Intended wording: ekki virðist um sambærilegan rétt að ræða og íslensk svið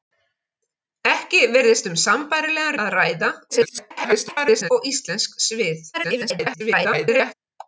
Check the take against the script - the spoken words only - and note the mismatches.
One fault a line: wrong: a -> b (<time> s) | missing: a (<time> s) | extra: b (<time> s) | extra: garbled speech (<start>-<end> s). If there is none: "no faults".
missing: rétt (2.8 s)
extra: garbled speech (3.5-4.7 s)
extra: garbled speech (5.9-7.3 s)